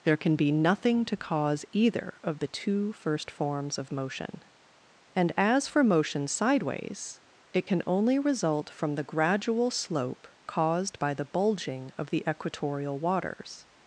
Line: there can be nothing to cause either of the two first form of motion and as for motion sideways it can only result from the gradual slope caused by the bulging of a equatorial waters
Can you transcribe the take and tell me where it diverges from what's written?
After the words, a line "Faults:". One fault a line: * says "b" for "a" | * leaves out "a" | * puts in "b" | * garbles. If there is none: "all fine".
there can be nothing to cause either of the two first forms of motion and as for motion sideways it can only result from the gradual slope caused by the bulging of the equatorial waters
Faults:
* says "forms" for "form"
* says "the" for "a"